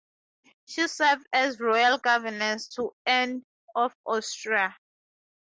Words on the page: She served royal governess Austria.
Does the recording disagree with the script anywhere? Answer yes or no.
yes